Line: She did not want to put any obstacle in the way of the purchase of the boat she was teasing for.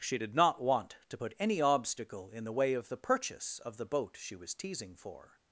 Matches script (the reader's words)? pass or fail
pass